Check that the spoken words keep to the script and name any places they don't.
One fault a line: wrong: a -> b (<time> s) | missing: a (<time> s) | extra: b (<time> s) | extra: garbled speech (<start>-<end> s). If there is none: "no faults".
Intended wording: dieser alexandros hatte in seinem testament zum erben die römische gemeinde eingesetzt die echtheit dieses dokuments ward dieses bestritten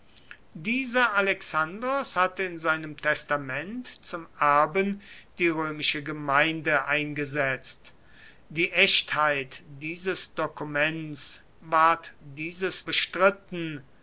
no faults